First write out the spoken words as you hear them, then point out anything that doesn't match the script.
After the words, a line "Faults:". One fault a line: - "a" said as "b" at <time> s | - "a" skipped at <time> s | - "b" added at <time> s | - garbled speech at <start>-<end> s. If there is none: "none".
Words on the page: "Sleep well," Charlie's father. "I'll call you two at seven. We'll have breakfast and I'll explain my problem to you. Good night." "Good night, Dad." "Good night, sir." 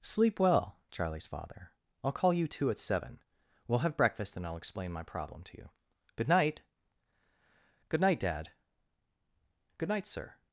"Sleep well," Charlie's father. "I'll call you two at seven. We'll have breakfast and I'll explain my problem to you. Good night." "Good night, Dad." "Good night, sir."
Faults:
none